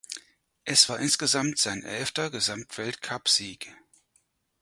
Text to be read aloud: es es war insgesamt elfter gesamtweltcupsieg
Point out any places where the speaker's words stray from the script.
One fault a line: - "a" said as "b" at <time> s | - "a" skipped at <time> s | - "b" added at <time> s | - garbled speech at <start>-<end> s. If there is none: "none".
- "es" skipped at 0.9 s
- "sein" added at 1.6 s